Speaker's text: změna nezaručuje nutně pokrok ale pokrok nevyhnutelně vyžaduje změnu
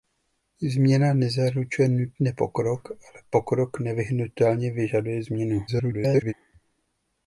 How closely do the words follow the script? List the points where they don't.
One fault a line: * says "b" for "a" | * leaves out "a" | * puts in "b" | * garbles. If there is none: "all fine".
* garbles